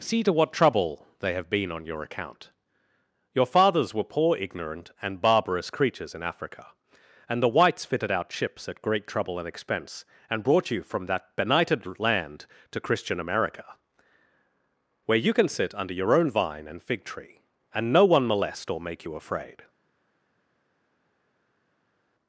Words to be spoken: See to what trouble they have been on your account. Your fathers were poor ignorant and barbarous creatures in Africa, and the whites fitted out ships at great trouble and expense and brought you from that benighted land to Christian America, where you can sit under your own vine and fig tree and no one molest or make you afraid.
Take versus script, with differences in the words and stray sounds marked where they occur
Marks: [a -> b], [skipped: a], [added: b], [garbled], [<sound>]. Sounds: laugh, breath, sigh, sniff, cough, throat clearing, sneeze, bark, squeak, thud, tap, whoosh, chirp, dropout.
See to what trouble they have been on your account. Your fathers were poor ignorant and barbarous creatures in Africa, and the whites fitted out ships at great trouble and expense and brought you from that benighted land to Christian America, where you can sit under your own vine and fig tree and no one molest or make you afraid.